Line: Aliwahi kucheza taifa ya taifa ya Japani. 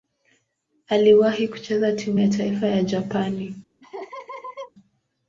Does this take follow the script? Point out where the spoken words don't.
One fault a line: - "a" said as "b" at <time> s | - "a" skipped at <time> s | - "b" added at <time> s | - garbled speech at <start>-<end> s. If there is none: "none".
- "taifa" said as "timu" at 1.9 s